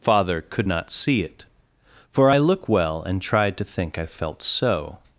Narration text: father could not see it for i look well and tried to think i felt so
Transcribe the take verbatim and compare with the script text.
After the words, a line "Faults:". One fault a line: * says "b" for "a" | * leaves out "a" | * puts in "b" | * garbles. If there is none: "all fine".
father could not see it for i look well and tried to think i felt so
Faults:
all fine